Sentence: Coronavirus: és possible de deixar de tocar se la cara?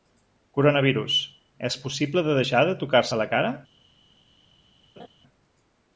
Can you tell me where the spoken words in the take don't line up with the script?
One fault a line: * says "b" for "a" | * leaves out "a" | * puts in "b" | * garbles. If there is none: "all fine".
all fine